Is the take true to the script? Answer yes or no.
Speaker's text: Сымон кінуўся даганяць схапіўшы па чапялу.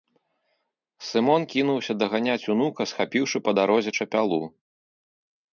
no